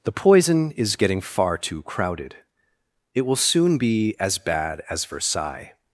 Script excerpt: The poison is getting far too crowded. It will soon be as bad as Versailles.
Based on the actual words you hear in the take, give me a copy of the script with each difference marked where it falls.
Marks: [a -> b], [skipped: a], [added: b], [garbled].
The poison is getting far too crowded. It will soon be as bad as Versailles.